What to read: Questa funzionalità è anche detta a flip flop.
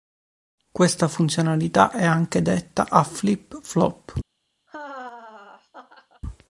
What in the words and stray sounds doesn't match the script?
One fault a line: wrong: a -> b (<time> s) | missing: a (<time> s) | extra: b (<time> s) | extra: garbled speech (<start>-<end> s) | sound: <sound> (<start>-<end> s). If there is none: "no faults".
sound: laugh (4.7-6.2 s)